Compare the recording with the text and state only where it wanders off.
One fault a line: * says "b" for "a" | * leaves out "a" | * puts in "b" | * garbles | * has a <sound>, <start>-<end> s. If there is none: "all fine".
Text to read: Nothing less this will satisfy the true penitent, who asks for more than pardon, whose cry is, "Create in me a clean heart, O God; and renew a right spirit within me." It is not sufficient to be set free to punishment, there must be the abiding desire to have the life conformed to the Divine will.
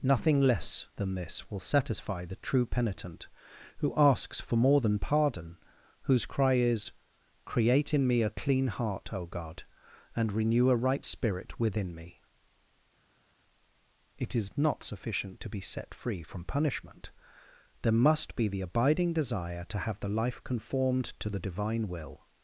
* puts in "than"
* says "from" for "to"